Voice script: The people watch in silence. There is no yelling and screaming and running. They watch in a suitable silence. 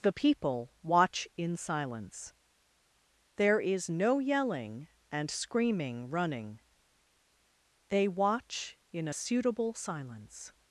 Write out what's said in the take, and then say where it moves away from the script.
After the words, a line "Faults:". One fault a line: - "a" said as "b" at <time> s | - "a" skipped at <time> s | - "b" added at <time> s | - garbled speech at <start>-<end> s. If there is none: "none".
The people watch in silence. There is no yelling and screaming running. They watch in a suitable silence.
Faults:
- "and" skipped at 6.1 s